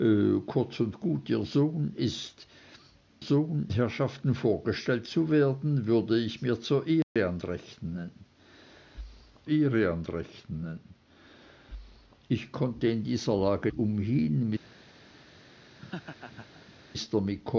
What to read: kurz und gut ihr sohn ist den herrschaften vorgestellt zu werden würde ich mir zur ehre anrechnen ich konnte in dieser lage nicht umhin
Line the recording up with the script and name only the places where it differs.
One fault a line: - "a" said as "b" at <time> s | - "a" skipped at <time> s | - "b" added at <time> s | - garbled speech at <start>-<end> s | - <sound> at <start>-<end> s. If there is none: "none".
- "den" said as "sohn" at 3.2 s
- dropout at 7.0-7.2 s
- "ehre anrechnen" added at 9.5 s
- "nicht" skipped at 13.7 s
- laugh at 15.8-16.7 s